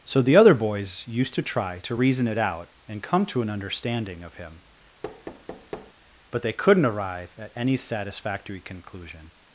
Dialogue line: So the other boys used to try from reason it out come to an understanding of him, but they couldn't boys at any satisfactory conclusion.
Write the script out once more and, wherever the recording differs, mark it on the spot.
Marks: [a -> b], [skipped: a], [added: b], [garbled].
So the other boys used to try [from -> to] reason it out [added: and] come to an understanding of him, but they couldn't [boys -> arrive] at any satisfactory conclusion.